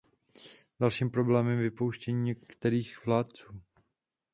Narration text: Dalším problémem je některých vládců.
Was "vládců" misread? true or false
false